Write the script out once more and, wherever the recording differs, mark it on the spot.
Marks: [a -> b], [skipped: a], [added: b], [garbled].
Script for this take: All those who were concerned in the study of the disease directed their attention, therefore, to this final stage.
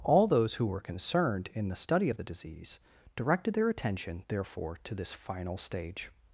All those who were concerned in the study of the disease directed their attention, therefore, to this final stage.